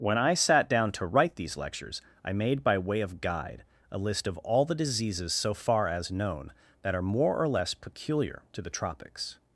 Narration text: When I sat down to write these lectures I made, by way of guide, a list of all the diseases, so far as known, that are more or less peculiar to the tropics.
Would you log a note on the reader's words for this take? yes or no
no